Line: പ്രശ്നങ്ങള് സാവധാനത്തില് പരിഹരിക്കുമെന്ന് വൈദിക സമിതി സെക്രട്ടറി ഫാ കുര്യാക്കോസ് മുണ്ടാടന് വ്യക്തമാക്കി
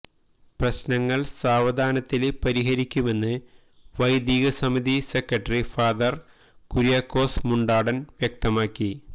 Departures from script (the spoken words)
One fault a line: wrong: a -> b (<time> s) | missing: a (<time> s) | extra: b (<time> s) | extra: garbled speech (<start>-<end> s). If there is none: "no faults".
no faults